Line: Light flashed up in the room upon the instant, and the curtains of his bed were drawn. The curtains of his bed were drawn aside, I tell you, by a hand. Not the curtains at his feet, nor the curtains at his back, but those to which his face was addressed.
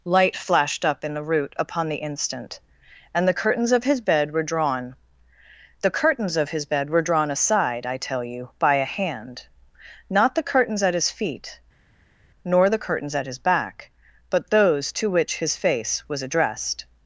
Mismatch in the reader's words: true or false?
true